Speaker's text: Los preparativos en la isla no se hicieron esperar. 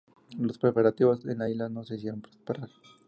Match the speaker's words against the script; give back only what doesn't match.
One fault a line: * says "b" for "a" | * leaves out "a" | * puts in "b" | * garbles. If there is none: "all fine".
all fine